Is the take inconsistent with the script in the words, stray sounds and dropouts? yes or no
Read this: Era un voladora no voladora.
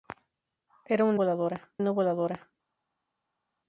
no